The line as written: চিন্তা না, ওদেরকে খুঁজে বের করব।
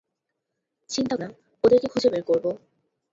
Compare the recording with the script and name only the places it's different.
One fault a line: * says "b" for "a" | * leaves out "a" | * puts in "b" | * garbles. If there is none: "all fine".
all fine